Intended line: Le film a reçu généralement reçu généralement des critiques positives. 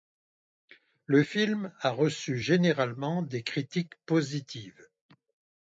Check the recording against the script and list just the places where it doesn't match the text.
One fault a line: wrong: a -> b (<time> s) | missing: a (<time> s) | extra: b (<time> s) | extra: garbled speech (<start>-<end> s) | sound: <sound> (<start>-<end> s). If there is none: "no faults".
missing: reçu généralement (3.2 s)